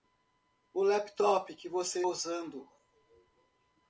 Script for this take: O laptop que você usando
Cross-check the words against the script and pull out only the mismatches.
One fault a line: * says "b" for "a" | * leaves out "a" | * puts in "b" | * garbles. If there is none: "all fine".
all fine